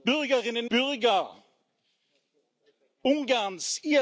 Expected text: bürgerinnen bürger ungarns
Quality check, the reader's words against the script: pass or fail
pass